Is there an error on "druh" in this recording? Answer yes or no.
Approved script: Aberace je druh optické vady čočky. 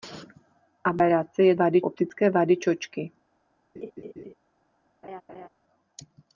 yes